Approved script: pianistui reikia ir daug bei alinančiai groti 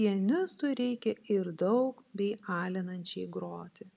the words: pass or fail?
pass